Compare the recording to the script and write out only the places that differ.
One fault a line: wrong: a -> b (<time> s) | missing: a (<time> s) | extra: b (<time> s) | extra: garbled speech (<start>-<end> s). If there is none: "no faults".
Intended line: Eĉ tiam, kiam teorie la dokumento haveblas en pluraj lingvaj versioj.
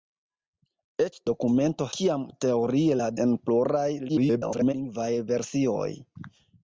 wrong: tiam -> dokumento (1.3 s)
missing: dokumento haveblas (3.1 s)
extra: garbled speech (4.1-4.7 s)